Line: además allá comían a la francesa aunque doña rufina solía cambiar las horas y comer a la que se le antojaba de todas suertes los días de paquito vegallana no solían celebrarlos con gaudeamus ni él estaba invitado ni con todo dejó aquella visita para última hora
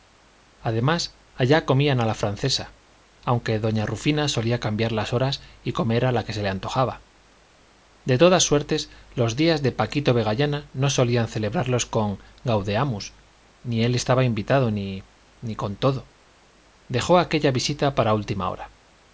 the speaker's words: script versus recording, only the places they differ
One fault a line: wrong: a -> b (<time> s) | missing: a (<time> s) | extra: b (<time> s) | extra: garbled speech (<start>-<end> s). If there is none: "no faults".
no faults